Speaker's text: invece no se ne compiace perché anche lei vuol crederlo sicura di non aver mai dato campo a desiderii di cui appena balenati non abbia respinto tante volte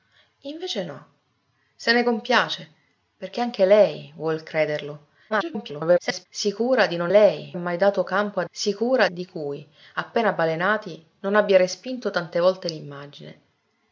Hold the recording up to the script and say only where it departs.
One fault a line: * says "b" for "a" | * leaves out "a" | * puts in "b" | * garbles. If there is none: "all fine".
* garbles
* says "lei" for "aver"
* says "sicura" for "desiderii"